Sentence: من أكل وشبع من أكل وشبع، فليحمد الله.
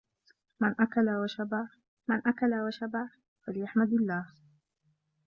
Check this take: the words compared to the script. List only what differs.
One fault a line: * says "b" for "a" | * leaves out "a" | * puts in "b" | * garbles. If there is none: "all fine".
all fine